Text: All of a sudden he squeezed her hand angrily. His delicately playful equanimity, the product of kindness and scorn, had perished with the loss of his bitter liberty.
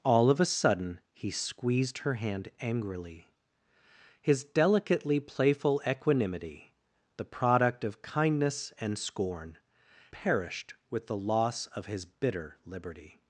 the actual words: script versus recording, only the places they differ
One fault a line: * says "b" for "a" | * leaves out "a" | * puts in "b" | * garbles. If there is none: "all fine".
* leaves out "had"